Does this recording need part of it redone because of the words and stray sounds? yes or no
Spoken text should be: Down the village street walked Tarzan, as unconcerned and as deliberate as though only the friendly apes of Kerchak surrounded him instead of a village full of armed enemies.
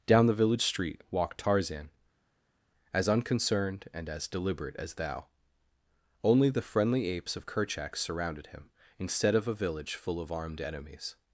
yes